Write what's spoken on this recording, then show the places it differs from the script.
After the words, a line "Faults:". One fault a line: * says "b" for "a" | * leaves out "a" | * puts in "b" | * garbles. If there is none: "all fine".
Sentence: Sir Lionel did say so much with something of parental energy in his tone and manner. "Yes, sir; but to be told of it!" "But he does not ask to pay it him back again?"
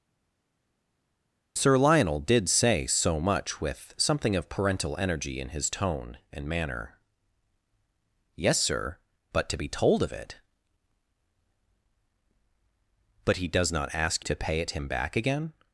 Sir Lionel did say so much with something of parental energy in his tone and manner. "Yes, sir; but to be told of it!" "But he does not ask to pay it him back again?"
Faults:
all fine